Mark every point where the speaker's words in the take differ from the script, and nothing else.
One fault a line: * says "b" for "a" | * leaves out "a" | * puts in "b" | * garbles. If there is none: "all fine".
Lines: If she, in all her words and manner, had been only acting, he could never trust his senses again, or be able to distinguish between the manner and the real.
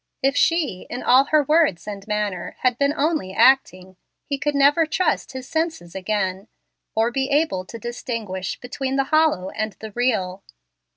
* says "hollow" for "manner"